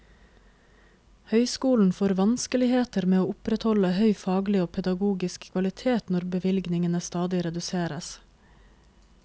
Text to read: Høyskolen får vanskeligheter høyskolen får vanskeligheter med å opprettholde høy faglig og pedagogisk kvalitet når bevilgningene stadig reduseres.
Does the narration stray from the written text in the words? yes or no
yes